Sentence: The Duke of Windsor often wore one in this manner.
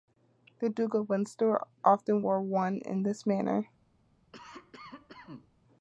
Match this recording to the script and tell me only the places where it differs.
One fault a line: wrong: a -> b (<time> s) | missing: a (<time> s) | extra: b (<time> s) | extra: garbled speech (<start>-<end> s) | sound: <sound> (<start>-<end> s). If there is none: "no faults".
sound: cough (4.3-5.5 s)